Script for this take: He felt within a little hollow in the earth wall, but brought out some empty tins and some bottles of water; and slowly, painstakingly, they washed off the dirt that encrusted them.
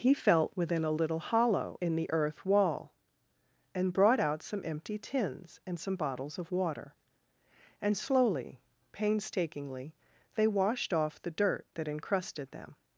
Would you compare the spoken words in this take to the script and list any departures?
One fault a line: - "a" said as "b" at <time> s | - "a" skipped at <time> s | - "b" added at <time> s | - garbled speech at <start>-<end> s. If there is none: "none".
- "but" said as "and" at 3.7 s